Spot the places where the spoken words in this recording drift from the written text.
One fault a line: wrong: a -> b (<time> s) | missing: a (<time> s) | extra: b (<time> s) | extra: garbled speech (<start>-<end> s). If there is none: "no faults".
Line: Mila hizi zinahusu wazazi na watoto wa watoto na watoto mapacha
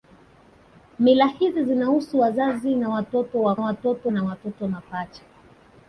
no faults